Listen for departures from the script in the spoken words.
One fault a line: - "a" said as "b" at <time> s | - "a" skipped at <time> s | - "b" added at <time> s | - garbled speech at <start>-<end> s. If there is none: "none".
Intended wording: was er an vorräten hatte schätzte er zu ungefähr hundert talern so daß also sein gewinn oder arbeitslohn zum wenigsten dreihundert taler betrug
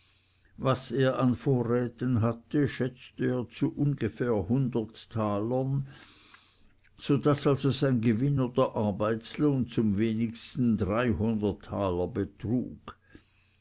none